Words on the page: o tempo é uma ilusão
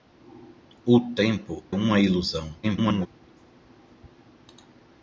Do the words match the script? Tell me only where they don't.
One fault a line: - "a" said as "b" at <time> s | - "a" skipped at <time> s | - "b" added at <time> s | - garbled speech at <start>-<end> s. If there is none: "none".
- "é" skipped at 1.6 s
- garbled speech at 2.6-3.1 s